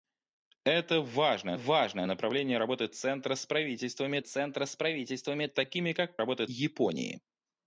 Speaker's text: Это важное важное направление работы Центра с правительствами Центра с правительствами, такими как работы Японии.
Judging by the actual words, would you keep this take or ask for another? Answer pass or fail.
pass